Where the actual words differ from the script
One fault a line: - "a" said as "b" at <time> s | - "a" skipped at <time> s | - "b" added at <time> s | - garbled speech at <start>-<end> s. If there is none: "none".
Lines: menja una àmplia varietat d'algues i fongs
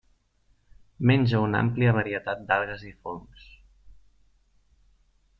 none